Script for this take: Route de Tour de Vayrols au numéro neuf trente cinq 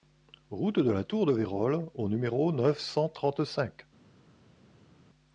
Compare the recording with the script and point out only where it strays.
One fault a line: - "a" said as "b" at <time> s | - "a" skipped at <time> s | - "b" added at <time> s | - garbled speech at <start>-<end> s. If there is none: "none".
- "la" added at 0.9 s
- "cent" added at 2.8 s